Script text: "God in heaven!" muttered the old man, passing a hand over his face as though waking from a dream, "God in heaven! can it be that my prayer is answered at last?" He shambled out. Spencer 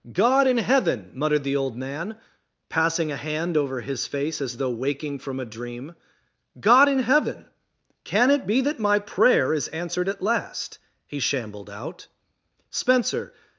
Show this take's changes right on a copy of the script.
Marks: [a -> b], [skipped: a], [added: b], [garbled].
"God in heaven!" muttered the old man, passing a hand over his face as though waking from a dream, "God in heaven! can it be that my prayer is answered at last?" He shambled out. Spencer